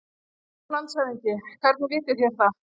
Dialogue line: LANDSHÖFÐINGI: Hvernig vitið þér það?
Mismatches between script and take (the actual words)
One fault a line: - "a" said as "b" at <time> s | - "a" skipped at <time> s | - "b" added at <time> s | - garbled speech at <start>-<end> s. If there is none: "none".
none